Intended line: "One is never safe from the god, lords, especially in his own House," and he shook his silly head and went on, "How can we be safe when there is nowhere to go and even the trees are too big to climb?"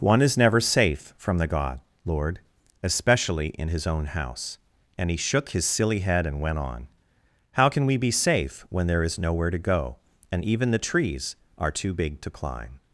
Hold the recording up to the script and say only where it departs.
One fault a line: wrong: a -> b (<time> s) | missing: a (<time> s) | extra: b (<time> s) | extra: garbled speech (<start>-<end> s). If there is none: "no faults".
wrong: lords -> lord (2.0 s)